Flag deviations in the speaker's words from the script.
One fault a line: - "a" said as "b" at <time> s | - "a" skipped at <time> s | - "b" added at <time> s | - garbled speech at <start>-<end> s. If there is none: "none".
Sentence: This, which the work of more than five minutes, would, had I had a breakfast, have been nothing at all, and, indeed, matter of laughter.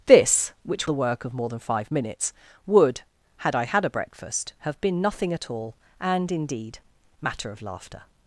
none